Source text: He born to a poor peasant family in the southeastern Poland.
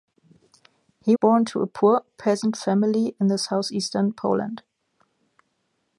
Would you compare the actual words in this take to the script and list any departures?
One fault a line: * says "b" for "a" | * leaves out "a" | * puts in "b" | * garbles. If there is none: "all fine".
all fine